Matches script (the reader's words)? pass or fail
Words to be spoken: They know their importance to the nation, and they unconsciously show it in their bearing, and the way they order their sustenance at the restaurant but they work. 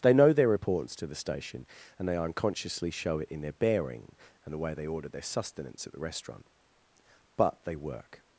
fail